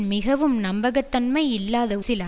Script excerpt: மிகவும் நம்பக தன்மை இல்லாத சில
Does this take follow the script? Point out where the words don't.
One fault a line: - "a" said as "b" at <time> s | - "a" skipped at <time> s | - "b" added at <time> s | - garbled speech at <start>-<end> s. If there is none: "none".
none